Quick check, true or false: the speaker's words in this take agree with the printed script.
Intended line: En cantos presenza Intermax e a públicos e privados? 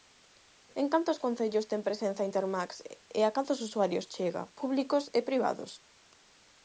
false